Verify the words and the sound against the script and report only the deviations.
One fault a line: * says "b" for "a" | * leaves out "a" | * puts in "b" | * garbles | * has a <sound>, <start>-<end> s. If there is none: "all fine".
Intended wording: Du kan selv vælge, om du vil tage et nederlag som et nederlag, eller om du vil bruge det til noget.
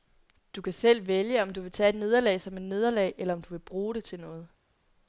all fine